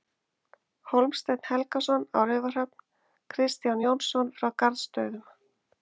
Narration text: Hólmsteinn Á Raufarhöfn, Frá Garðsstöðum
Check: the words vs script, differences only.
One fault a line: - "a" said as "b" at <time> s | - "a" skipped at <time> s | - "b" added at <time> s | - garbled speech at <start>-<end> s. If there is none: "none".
- "Helgason" added at 1.5 s
- "Kristján Jónsson" added at 3.4 s